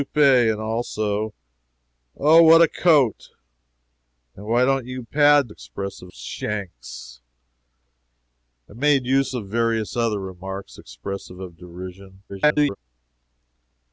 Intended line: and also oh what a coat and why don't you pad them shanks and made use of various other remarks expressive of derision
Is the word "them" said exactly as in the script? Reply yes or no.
no